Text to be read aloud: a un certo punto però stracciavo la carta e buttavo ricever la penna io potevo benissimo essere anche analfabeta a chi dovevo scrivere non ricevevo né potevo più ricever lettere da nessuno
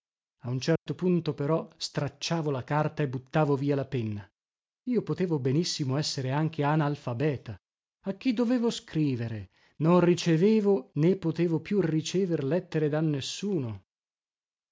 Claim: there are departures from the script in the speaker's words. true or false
true